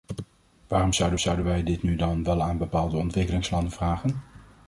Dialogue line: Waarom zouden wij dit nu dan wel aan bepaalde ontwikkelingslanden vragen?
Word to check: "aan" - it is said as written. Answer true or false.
true